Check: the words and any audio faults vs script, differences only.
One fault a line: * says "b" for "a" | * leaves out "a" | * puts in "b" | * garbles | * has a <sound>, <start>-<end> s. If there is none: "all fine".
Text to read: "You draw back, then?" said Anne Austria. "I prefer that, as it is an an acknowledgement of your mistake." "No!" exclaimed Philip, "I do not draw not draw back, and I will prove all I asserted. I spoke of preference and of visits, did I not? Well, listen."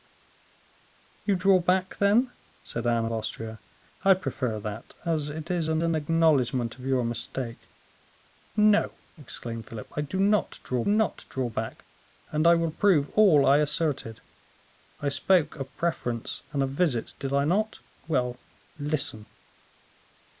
all fine